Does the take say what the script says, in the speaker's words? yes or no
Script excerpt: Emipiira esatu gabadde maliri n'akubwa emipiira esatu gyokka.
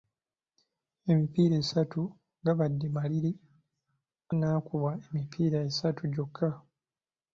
yes